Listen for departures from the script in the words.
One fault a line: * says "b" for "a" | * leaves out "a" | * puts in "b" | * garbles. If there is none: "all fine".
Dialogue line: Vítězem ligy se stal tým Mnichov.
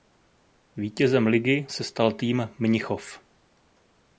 all fine